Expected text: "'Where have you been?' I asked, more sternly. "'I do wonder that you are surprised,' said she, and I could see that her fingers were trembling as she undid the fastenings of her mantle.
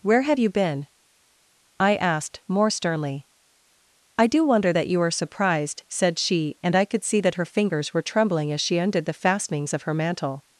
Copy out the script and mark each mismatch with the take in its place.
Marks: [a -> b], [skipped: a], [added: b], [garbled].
"'Where have you been?' I asked, more sternly. "'I do wonder that you are surprised,' said she, and I could see that her fingers were trembling as she undid the fastenings of her mantle.